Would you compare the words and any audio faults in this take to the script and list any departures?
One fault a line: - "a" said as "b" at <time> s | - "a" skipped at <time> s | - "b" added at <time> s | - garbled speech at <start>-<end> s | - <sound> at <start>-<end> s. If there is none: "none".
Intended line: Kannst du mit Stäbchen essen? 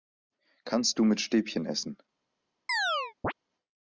- chirp at 2.7-3.3 s